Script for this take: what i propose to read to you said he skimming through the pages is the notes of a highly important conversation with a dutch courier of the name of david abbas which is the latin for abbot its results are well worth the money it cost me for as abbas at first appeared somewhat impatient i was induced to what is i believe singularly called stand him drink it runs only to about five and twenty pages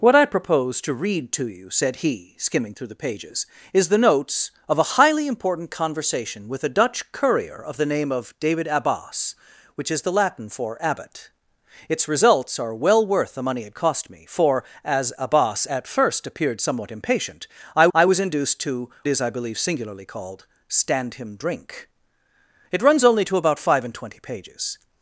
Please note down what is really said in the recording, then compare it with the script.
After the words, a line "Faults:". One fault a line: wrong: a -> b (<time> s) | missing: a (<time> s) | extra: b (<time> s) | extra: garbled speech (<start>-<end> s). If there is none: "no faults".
what i propose to read to you said he skimming through the pages is the notes of a highly important conversation with a dutch courier of the name of david abbas which is the latin for abbot its results are well worth the money it cost me for as abbas at first appeared somewhat impatient i i was induced to is i believe singularly called stand him drink it runs only to about five and twenty pages
Faults:
extra: i (17.9 s)
missing: what (18.9 s)